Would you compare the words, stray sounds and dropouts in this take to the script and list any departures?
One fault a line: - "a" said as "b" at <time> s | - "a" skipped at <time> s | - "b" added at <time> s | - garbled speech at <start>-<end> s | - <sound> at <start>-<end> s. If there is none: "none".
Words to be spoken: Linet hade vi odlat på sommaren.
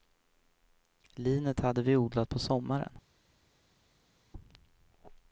none